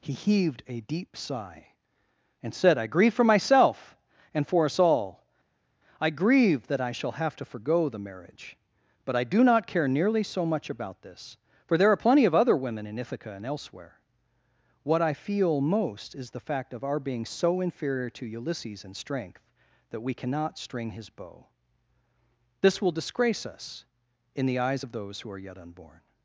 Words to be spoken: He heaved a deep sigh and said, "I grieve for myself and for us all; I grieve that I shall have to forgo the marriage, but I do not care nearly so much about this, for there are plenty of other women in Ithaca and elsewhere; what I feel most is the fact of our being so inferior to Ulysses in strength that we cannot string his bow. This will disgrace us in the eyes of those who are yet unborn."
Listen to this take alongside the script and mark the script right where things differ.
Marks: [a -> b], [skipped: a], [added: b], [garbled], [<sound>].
He heaved a deep sigh and said, "I grieve for myself and for us all; I grieve that I shall have to forgo the marriage, but I do not care nearly so much about this, for there are plenty of other women in Ithaca and elsewhere; what I feel most is the fact of our being so inferior to Ulysses in strength that we cannot string his bow. This will disgrace us in the eyes of those who are yet unborn."